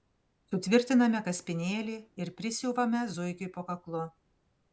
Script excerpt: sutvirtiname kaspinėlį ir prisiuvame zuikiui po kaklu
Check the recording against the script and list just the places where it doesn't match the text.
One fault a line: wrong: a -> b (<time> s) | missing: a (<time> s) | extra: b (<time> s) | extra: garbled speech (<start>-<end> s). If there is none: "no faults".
no faults